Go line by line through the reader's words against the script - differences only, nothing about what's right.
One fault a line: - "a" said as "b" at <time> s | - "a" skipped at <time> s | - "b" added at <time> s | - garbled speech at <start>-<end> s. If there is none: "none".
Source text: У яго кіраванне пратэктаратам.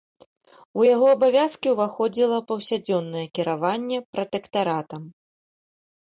- "абавязкі ўваходзіла паўсядзённае" added at 1.2 s